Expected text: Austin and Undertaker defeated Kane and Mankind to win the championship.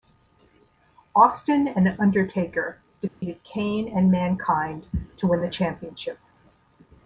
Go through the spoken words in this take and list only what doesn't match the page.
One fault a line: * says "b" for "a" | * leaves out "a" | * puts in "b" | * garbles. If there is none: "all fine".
all fine